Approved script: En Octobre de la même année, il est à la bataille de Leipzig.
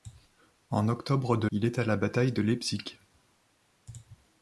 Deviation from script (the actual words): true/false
true